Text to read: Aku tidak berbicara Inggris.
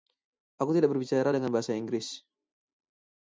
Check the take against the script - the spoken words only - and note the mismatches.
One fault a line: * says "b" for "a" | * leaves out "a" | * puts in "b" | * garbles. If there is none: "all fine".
* puts in "dengan bahasa"